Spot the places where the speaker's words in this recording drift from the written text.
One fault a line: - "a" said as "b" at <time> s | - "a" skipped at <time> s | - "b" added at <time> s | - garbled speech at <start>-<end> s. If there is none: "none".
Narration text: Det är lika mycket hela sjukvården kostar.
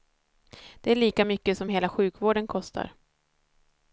- "som" added at 1.6 s